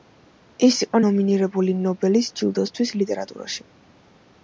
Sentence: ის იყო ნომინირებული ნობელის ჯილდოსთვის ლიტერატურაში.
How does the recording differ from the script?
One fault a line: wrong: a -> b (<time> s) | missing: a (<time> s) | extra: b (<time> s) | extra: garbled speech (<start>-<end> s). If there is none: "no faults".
no faults